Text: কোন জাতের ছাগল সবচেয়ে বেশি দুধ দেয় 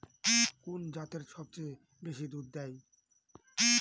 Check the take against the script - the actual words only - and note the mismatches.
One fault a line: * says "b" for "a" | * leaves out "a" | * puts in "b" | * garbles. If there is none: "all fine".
* leaves out "ছাগল"